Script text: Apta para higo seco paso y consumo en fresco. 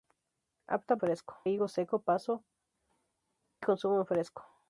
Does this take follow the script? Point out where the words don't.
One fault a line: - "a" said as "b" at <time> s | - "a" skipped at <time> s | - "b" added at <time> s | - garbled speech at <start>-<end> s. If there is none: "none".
- "para" said as "fresco" at 1.0 s
- "y" skipped at 2.4 s